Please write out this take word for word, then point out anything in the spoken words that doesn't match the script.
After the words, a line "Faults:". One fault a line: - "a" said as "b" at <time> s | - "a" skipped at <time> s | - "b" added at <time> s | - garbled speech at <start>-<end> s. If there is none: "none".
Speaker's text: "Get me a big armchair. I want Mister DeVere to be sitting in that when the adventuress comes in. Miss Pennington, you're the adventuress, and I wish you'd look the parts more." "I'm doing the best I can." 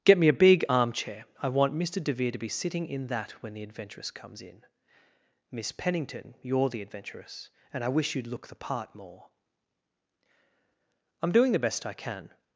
"Get me a big armchair. I want Mister DeVere to be sitting in that when the adventuress comes in. Miss Pennington, you're the adventuress, and I wish you'd look the part more." "I'm doing the best I can."
Faults:
- "parts" said as "part" at 8.5 s